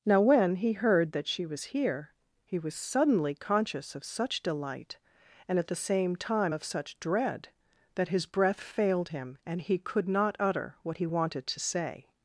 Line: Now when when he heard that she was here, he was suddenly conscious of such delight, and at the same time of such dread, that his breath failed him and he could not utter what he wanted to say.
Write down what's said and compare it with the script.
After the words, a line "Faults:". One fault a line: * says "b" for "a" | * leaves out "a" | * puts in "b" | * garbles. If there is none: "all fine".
Now when he heard that she was here, he was suddenly conscious of such delight, and at the same time of such dread, that his breath failed him and he could not utter what he wanted to say.
Faults:
* leaves out "when"